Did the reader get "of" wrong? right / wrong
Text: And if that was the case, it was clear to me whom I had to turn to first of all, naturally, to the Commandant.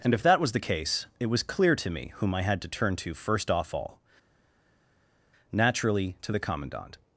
wrong